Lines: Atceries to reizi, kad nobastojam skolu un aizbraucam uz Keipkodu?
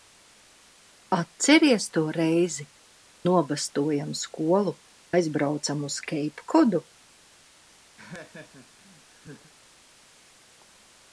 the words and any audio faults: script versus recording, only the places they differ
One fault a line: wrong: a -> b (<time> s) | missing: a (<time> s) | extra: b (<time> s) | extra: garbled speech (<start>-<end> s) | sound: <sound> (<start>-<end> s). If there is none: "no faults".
missing: kad (2.6 s)
missing: un (4.8 s)
sound: laugh (8.0-9.5 s)